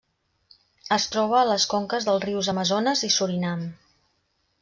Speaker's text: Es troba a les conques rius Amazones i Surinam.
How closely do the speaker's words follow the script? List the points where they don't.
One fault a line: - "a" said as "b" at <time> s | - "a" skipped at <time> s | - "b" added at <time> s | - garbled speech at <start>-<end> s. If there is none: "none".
- "dels" added at 2.1 s